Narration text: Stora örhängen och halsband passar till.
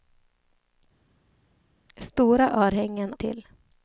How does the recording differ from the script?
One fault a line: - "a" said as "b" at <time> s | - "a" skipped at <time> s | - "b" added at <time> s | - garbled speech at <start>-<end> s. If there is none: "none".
- "och halsband passar" skipped at 3.1 s